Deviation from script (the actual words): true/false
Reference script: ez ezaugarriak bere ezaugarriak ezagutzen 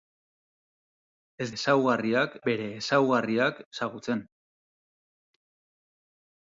false